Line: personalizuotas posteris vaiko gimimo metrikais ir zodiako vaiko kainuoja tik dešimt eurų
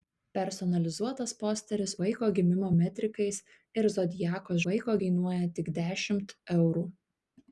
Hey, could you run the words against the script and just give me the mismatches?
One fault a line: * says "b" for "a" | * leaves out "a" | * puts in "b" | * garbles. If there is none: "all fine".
all fine